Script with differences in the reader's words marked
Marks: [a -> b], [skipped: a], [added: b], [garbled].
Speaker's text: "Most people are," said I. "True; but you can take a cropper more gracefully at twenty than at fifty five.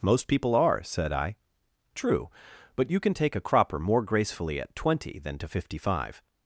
"Most people are," said I. "True; but you can take a cropper more gracefully at twenty than [at -> to] fifty five.